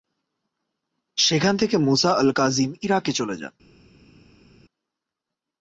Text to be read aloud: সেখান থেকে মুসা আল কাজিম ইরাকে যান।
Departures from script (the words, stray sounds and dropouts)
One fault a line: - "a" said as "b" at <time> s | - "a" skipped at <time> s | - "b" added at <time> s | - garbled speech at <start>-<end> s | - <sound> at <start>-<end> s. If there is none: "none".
- "চলে" added at 3.1 s